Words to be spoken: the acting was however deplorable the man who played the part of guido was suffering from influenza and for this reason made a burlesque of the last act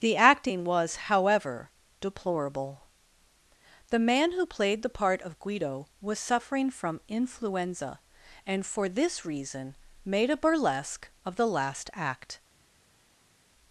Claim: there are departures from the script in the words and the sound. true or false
false